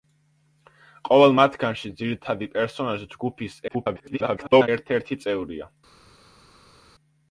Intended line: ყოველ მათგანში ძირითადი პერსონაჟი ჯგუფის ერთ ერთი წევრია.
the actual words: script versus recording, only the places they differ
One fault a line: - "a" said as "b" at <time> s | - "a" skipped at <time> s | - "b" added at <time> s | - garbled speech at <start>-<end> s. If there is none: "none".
- garbled speech at 3.7-4.7 s